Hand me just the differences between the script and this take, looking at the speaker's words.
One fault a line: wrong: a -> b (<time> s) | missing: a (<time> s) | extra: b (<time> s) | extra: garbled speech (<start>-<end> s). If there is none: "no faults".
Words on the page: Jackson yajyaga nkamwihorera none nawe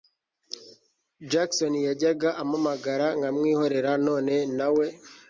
extra: ampamagara (2.4 s)